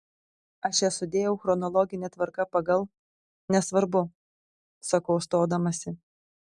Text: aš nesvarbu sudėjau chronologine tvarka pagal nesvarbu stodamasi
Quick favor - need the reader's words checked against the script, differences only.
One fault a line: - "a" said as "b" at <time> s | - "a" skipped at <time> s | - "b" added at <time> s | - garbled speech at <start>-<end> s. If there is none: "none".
- "nesvarbu" said as "jas" at 0.8 s
- "sakau" added at 4.9 s